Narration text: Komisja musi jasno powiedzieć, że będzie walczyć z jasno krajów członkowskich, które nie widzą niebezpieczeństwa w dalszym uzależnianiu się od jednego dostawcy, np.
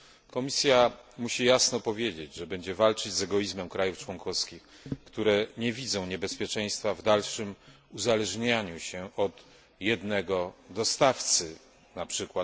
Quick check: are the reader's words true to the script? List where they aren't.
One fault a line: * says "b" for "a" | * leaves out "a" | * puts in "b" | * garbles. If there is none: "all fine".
* says "egoizmem" for "jasno"